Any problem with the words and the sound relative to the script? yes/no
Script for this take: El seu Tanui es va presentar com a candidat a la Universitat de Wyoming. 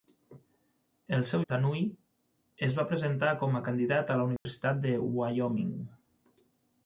yes